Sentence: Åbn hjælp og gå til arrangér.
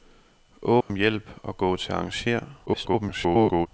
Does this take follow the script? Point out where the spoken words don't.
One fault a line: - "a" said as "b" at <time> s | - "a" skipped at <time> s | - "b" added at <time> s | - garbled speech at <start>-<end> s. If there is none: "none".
- garbled speech at 2.7-3.7 s